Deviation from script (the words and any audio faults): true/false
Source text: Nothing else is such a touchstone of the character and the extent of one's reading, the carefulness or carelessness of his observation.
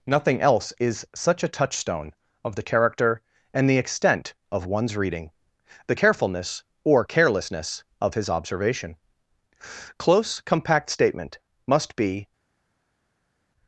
true